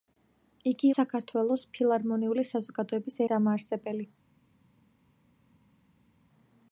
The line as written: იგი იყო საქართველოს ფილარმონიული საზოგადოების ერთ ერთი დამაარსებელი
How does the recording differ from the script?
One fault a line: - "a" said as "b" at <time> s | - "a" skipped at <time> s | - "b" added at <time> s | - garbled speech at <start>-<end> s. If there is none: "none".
- "იყო" skipped at 0.9 s
- "ერთ ერთი" skipped at 3.2 s